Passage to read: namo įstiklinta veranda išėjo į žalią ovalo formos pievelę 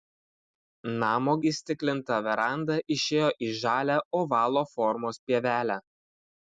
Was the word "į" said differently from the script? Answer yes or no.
no